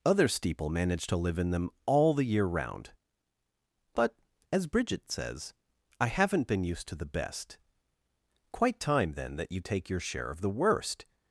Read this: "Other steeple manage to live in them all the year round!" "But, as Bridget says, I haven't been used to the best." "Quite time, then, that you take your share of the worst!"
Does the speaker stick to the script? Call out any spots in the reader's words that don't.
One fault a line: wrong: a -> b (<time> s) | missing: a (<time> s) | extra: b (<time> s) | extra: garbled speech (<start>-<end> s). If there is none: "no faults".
no faults